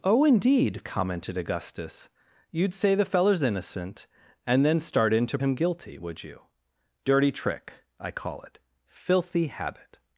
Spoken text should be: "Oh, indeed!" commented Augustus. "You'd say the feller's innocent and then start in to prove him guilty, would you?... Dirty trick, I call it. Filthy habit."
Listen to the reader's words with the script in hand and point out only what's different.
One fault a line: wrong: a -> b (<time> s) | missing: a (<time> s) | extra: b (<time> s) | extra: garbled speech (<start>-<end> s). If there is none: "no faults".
missing: prove (5.4 s)